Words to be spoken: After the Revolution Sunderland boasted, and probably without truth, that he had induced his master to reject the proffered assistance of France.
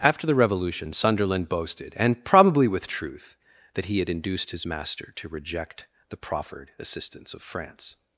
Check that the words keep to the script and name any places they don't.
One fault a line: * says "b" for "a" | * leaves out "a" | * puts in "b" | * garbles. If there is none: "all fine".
* says "with" for "without"